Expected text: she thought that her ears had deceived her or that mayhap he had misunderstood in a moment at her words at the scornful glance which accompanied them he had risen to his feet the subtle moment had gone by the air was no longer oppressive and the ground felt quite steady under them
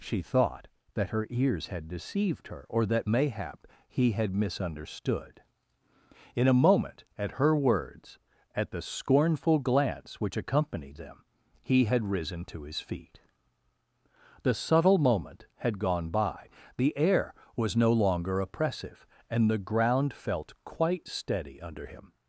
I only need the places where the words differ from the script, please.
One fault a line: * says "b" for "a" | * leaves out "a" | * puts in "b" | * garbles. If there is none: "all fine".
* says "him" for "them"